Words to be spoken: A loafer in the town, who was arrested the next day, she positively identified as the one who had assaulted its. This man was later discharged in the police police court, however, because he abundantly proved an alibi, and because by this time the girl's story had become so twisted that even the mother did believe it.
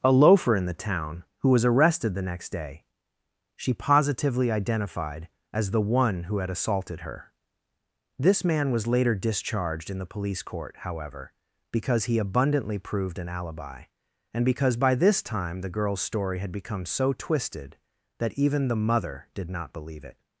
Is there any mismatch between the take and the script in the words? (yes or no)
yes